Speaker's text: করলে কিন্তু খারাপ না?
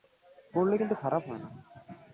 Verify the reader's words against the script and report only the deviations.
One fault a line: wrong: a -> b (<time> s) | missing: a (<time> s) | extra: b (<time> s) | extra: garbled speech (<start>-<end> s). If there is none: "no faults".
extra: হয় (1.3 s)